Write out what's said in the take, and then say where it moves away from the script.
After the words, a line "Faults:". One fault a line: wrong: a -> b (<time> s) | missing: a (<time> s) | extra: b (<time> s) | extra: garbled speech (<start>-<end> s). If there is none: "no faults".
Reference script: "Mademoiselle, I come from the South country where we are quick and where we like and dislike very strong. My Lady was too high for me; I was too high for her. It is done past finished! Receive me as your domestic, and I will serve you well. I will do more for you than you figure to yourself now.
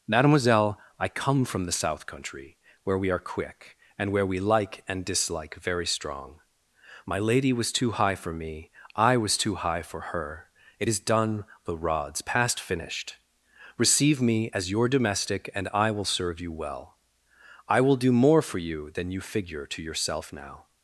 "Mademoiselle, I come from the South country where we are quick and where we like and dislike very strong. My Lady was too high for me; I was too high for her. It is done the rods past finished! Receive me as your domestic, and I will serve you well. I will do more for you than you figure to yourself now.
Faults:
extra: the rods (11.7 s)